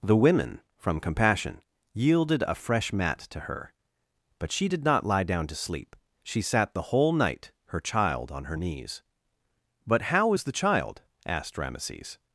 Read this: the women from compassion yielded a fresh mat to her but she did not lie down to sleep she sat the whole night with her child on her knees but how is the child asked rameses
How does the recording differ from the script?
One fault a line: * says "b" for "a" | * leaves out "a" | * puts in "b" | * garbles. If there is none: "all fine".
* leaves out "with"